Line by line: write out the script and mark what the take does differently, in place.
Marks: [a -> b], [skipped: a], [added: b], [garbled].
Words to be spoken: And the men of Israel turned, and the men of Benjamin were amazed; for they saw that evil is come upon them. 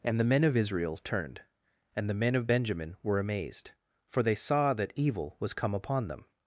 And the men of Israel turned, and the men of Benjamin were amazed; for they saw that evil [is -> was] come upon them.